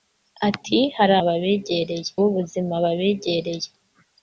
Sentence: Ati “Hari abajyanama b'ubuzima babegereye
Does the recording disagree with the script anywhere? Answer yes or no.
yes